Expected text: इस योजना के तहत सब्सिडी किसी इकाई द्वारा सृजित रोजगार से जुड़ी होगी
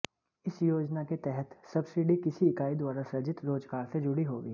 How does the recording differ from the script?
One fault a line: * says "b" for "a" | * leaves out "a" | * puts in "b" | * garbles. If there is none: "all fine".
all fine